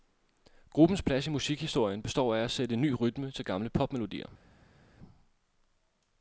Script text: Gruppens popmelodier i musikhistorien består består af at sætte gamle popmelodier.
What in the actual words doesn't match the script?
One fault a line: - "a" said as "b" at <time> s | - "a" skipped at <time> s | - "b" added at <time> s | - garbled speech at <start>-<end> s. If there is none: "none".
- "popmelodier" said as "plads" at 1.0 s
- "består" skipped at 2.4 s
- "ny rytme til" added at 2.8 s